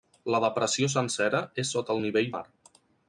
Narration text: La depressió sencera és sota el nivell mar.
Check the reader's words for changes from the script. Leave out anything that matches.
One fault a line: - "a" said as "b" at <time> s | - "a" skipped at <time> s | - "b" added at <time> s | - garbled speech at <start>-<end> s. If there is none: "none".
none